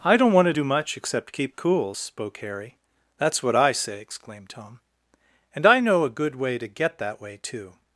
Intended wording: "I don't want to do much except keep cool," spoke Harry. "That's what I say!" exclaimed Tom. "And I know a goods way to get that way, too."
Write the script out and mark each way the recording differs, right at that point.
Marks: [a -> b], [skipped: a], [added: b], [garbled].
"I don't want to do much except keep cool," spoke Harry. "That's what I say!" exclaimed Tom. "And I know a [goods -> good] way to get that way, too."